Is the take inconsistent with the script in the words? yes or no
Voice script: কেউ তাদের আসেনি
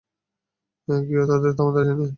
yes